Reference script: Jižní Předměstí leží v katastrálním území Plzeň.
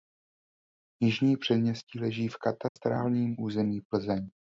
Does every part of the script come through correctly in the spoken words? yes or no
yes